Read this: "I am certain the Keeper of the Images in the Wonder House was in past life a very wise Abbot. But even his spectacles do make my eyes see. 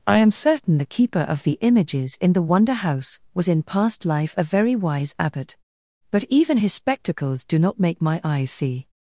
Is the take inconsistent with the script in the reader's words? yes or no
yes